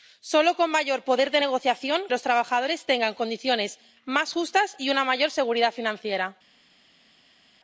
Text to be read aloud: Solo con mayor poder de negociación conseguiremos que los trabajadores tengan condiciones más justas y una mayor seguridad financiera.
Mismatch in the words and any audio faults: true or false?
true